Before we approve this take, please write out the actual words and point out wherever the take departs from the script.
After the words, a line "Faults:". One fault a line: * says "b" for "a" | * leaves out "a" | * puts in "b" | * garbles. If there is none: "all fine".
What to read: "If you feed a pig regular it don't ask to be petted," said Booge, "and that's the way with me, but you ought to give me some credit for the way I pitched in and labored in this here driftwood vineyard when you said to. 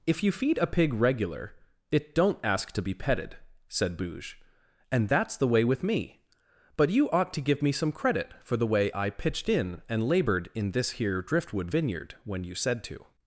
"If you feed a pig regular it don't ask to be petted," said Booge, "and that's the way with me, but you ought to give me some credit for the way I pitched in and labored in this here driftwood vineyard when you said to.
Faults:
all fine